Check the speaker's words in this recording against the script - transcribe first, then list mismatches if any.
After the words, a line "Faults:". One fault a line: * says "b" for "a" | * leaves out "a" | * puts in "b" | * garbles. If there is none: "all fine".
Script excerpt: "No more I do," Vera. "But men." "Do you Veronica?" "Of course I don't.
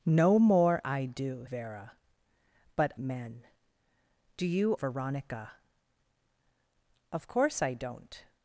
"No more I do," Vera. "But men." "Do you Veronica?" "Of course I don't.
Faults:
all fine